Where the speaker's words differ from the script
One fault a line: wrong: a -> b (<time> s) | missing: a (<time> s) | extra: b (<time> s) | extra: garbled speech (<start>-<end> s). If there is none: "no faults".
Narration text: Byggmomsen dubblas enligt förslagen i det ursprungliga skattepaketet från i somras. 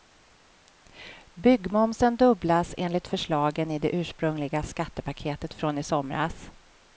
no faults